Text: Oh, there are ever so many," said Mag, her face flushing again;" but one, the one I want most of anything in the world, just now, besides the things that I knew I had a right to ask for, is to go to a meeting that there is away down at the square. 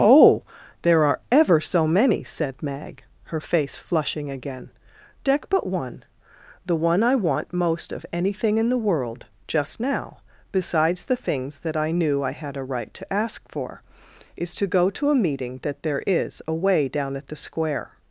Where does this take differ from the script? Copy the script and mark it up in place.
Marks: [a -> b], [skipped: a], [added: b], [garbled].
Oh, there are ever so many," said Mag, her face flushing again;" [added: deck] but one, the one I want most of anything in the world, just now, besides the things that I knew I had a right to ask for, is to go to a meeting that there is away down at the square.